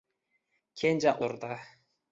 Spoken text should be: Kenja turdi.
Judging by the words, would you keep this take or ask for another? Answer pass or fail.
pass